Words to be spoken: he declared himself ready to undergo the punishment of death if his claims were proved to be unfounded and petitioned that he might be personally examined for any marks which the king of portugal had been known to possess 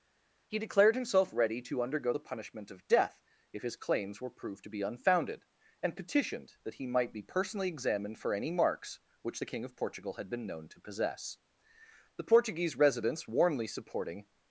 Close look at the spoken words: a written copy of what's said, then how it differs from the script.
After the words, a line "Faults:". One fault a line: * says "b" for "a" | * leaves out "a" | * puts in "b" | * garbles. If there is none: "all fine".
he declared himself ready to undergo the punishment of death if his claims were proved to be unfounded and petitioned that he might be personally examined for any marks which the king of portugal had been known to possess the portuguese residents warmly supporting
Faults:
* puts in "the portuguese residents warmly supporting"